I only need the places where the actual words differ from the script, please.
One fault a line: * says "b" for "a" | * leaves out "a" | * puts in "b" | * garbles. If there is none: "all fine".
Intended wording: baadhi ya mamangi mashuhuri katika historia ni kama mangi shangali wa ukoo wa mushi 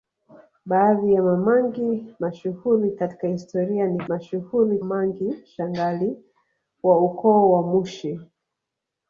* says "mashuhuri" for "kama"